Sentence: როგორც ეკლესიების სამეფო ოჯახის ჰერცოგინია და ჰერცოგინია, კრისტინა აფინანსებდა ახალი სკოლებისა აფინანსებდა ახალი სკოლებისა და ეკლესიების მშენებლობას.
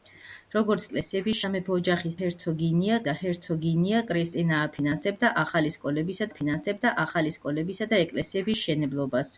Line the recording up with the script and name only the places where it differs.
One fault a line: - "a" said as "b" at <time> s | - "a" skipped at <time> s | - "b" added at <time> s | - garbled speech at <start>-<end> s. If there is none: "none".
none